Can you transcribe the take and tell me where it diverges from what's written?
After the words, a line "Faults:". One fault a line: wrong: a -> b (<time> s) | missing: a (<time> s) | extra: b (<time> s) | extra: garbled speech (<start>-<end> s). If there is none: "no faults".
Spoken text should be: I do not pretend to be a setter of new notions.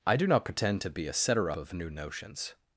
I do not pretend to be a setter of new notions.
Faults:
no faults